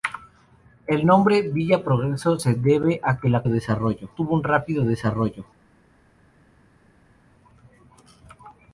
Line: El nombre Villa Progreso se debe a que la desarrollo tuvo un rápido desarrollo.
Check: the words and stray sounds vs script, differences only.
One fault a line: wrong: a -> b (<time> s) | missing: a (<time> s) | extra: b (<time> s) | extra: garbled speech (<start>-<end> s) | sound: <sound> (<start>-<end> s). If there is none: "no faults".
no faults